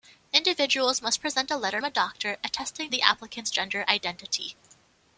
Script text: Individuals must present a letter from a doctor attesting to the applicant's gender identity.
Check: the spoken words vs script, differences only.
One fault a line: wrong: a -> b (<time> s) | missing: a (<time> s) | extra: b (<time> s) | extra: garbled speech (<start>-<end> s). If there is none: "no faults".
missing: from (1.8 s)
missing: to (2.9 s)